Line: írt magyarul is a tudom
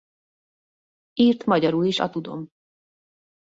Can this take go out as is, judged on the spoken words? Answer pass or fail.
pass